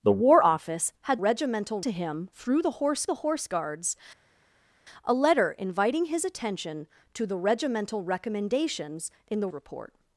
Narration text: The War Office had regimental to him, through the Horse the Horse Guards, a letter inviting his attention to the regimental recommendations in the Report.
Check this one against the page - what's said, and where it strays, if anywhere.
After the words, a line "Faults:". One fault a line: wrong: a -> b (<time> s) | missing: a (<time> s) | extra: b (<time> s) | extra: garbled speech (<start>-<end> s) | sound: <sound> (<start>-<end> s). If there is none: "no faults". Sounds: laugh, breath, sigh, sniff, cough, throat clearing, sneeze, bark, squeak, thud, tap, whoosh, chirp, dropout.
The War Office had regimental to him, through the Horse the Horse Guards, a letter inviting his attention to the regimental recommendations in the Report.
Faults:
no faults